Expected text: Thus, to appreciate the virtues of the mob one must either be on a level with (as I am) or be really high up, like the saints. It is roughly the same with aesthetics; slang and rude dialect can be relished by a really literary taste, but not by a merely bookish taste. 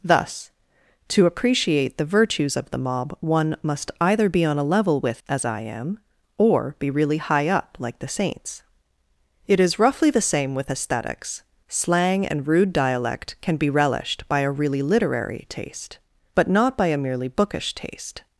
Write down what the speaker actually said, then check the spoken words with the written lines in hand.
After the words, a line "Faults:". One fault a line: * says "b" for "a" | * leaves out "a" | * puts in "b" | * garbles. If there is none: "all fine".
Thus, to appreciate the virtues of the mob one must either be on a level with (as I am) or be really high up, like the saints. It is roughly the same with aesthetics; slang and rude dialect can be relished by a really literary taste, but not by a merely bookish taste.
Faults:
all fine